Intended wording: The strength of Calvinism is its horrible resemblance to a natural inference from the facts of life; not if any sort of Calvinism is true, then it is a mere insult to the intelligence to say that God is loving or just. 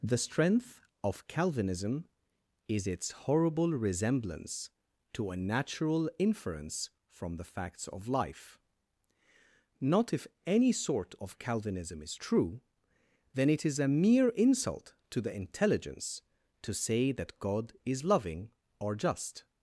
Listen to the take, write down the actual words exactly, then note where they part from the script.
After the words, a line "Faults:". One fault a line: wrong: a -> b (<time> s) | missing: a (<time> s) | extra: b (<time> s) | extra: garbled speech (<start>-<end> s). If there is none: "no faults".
The strength of Calvinism is its horrible resemblance to a natural inference from the facts of life; not if any sort of Calvinism is true, then it is a mere insult to the intelligence to say that God is loving or just.
Faults:
no faults